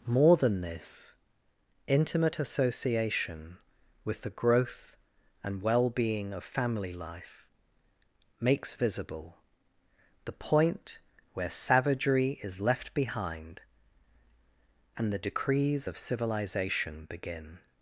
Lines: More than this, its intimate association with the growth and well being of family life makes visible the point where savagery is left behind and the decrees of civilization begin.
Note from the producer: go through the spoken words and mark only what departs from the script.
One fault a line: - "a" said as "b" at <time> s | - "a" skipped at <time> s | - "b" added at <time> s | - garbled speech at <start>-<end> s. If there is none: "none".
- "its" skipped at 1.1 s